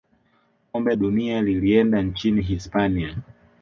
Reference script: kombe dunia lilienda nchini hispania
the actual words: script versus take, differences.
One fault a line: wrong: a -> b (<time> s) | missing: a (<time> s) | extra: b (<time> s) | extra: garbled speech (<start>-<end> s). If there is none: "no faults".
no faults